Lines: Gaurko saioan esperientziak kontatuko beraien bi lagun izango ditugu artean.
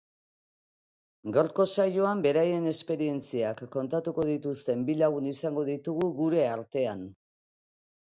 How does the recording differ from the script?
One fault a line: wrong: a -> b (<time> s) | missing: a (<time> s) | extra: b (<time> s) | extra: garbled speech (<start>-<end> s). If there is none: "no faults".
extra: beraien (2.3 s)
wrong: beraien -> dituzten (4.3 s)
extra: gure (6.2 s)